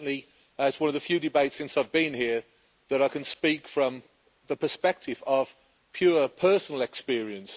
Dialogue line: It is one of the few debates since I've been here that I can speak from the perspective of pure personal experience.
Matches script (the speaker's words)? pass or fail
pass